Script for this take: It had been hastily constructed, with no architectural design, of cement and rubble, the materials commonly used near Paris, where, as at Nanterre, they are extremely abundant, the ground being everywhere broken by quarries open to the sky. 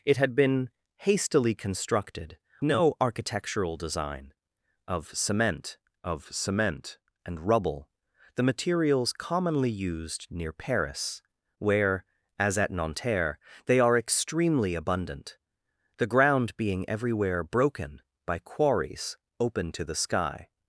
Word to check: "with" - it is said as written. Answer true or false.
false